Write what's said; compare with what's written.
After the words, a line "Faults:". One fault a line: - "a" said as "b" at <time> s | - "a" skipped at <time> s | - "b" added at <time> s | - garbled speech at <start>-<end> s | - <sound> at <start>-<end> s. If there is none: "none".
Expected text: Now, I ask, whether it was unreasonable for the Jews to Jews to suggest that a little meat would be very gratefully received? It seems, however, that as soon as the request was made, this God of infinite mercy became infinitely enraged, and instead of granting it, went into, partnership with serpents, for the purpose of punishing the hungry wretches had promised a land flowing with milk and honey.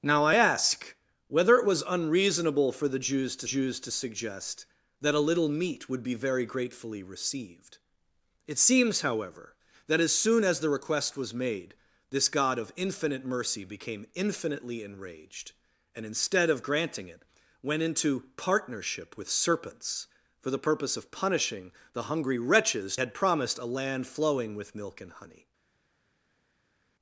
Now, I ask, whether it was unreasonable for the Jews to Jews to suggest that a little meat would be very gratefully received? It seems, however, that as soon as the request was made, this God of infinite mercy became infinitely enraged, and instead of granting it, went into, partnership with serpents, for the purpose of punishing the hungry wretches had promised a land flowing with milk and honey.
Faults:
none